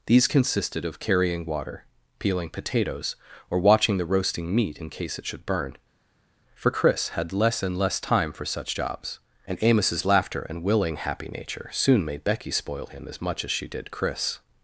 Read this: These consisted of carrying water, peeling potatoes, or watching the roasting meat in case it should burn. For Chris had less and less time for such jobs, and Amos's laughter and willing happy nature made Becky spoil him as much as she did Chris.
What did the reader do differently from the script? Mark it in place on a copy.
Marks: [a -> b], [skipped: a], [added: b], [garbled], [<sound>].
These consisted of carrying water, peeling potatoes, or watching the roasting meat in case it should burn. For Chris had less and less time for such jobs, and Amos's laughter and willing happy nature [added: soon] made Becky spoil him as much as she did Chris.